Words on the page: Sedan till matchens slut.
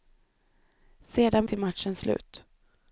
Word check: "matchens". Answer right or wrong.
right